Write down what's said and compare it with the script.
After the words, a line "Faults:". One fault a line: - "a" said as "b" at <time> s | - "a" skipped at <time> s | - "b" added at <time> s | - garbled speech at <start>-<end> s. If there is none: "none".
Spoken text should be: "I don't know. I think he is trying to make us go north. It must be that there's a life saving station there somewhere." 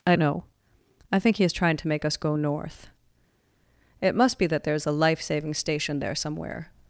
"I know. I think he is trying to make us go north. It must be that there's a life saving station there somewhere."
Faults:
- "don't" skipped at 0.1 s